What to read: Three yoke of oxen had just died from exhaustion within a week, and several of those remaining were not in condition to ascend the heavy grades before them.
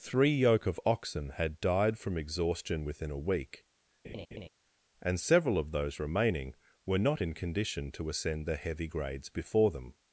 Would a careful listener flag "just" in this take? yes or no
yes